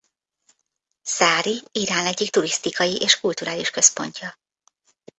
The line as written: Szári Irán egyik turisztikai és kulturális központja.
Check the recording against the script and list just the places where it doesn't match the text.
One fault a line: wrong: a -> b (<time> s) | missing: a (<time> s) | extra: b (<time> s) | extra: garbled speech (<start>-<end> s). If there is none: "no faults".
no faults